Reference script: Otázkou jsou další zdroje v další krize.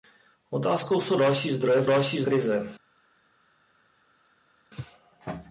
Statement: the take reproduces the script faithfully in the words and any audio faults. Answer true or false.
true